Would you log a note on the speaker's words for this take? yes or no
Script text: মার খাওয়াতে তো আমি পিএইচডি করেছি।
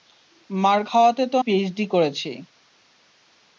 yes